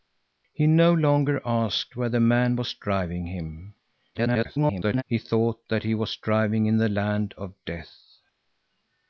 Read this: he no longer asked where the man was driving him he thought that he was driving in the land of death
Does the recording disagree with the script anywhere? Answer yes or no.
yes